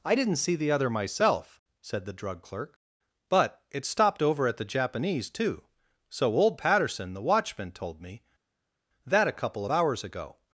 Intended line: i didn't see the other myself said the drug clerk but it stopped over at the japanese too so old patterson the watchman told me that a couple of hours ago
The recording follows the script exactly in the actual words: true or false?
true